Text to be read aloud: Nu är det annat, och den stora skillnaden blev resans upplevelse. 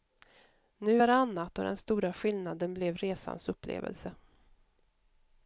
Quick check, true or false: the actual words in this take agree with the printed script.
true